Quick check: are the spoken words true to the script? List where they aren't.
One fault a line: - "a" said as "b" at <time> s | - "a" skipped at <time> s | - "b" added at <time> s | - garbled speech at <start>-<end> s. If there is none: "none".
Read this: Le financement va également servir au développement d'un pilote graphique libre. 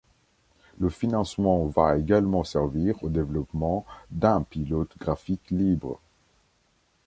none